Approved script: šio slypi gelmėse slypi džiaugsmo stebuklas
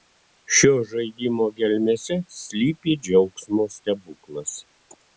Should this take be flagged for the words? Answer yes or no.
yes